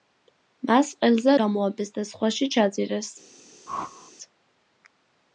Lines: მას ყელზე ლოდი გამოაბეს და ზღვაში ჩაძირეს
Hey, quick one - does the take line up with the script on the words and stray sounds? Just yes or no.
no